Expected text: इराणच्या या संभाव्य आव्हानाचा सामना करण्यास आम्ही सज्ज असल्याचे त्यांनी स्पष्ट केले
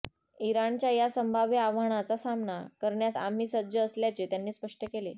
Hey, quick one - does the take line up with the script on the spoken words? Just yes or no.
yes